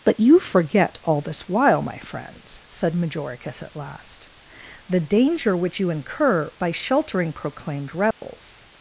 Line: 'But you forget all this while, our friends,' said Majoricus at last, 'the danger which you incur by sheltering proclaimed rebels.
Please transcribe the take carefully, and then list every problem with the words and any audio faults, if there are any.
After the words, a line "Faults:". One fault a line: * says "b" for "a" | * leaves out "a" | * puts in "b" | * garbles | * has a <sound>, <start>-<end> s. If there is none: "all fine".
'But you forget all this while, my friends,' said Majoricus at last, 'the danger which you incur by sheltering proclaimed rebels.
Faults:
* says "my" for "our"
* has a dropout, 8.1-8.2 s